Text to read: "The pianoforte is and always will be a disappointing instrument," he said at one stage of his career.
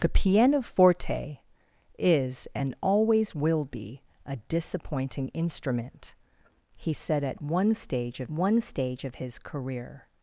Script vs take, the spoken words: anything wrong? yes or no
yes